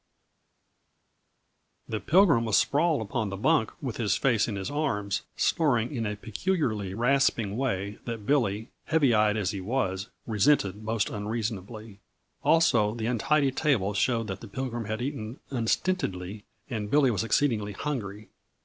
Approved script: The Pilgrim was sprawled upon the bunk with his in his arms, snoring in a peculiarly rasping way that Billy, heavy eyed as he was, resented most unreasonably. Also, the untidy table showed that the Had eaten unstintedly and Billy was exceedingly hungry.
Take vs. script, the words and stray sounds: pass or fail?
fail